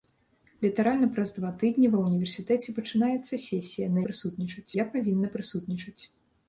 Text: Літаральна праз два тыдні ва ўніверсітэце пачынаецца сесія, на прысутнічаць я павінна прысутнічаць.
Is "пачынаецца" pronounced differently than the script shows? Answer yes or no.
no